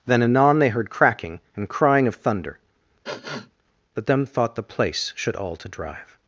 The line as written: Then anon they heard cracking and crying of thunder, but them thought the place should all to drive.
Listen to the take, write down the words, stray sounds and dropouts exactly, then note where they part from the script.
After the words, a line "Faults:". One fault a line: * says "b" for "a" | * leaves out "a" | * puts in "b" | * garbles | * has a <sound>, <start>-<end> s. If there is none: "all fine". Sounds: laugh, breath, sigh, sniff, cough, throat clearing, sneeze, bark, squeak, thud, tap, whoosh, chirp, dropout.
Then anon they heard cracking and crying of thunder, but them thought the place should all to drive.
Faults:
* has a sniff, 3.0-3.5 s